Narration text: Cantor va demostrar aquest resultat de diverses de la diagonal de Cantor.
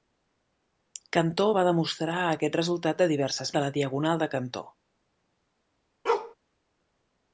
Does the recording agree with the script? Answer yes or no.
yes